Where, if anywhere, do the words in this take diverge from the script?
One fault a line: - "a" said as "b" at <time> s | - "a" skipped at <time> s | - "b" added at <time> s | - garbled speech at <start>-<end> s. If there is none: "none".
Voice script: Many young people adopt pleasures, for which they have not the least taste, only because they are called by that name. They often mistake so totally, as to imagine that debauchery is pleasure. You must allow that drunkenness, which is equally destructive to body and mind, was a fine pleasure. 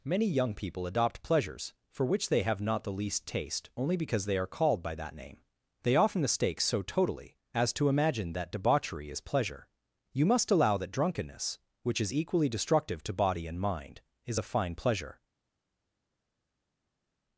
- "was" said as "is" at 14.2 s